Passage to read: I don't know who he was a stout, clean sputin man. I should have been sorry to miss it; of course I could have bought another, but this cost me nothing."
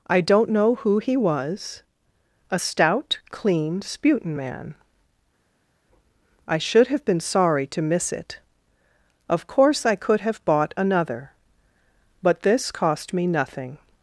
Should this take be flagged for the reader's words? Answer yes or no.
no